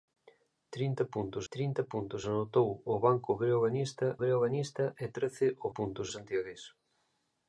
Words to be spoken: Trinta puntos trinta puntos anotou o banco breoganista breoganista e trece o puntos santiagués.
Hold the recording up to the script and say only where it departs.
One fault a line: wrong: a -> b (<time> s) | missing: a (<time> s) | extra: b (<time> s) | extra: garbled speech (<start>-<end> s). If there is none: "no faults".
no faults